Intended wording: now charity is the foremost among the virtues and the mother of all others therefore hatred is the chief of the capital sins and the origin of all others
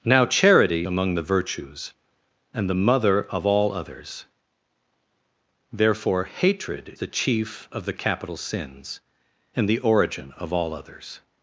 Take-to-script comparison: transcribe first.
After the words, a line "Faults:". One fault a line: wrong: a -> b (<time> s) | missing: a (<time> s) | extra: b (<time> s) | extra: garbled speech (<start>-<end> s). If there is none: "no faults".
now charity among the virtues and the mother of all others therefore hatred the chief of the capital sins and the origin of all others
Faults:
missing: is the foremost (0.9 s)
missing: is (6.9 s)